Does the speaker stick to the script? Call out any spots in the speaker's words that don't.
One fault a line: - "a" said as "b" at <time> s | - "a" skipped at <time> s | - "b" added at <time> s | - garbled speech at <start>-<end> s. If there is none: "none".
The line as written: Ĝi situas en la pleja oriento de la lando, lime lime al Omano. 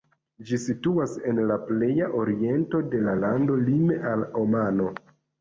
- "lime" skipped at 4.0 s